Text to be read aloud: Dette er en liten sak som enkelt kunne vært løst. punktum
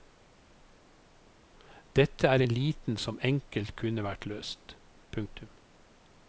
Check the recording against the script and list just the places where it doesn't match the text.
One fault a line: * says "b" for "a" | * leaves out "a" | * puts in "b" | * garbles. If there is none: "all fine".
* leaves out "sak"